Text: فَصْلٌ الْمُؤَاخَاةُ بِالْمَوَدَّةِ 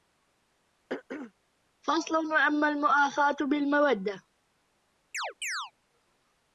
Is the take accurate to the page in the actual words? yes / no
no